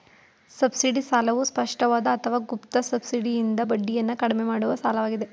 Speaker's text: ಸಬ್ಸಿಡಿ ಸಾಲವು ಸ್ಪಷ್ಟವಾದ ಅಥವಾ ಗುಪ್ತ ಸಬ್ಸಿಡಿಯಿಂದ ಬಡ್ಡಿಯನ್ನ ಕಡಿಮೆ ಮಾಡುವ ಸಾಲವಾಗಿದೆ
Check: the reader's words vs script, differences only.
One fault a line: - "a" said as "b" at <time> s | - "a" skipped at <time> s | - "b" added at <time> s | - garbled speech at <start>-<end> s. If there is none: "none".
none